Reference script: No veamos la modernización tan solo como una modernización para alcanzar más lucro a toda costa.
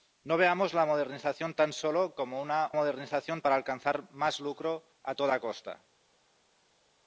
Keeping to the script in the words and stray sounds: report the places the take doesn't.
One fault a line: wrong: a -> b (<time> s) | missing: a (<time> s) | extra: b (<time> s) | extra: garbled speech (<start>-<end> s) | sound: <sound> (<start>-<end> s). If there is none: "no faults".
no faults